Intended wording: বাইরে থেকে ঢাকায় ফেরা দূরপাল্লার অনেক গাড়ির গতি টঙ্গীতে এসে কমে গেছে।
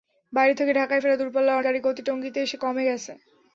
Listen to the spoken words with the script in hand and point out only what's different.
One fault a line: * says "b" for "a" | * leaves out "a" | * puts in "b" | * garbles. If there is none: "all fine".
* leaves out "অনেক"